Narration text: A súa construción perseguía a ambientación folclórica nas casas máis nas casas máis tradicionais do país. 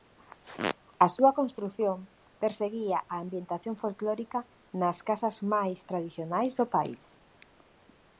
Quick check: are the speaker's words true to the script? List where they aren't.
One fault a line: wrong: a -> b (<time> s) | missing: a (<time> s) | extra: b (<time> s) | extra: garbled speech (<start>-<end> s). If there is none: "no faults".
missing: nas casas máis (5.8 s)